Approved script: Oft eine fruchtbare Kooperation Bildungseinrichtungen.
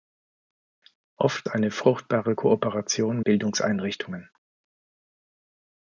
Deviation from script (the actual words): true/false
false